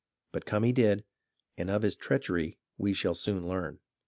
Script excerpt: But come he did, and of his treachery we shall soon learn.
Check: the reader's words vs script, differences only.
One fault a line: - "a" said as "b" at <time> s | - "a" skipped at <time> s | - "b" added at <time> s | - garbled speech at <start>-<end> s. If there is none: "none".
none